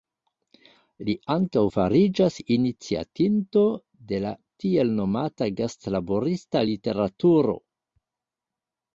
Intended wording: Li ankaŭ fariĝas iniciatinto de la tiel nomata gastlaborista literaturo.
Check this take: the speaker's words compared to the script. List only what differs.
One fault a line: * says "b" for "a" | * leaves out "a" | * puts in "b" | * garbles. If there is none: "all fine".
all fine